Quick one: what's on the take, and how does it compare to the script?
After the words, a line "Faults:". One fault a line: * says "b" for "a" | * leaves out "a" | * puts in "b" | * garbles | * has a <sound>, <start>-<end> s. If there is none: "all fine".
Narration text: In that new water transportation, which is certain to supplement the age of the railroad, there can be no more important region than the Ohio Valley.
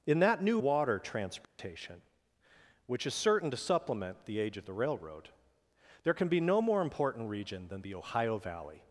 In that new water transportation, which is certain to supplement the age of the railroad, there can be no more important region than the Ohio Valley.
Faults:
* has a dropout, 1.4-1.6 s